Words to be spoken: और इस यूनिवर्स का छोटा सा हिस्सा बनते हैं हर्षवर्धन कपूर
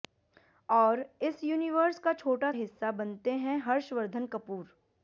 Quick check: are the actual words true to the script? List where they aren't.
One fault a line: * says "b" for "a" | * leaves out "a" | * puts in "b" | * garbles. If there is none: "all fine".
* leaves out "सा"